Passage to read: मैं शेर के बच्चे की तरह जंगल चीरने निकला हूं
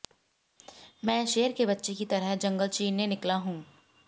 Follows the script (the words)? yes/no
yes